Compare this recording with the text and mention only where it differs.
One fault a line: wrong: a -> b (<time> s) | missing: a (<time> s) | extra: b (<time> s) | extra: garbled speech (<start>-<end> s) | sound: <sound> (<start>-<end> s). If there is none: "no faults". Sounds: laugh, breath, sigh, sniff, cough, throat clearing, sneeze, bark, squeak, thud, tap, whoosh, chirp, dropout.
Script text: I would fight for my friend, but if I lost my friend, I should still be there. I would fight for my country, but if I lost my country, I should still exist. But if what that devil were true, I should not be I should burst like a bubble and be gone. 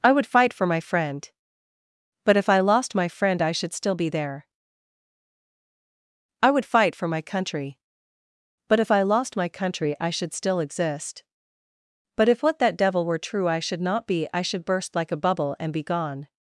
no faults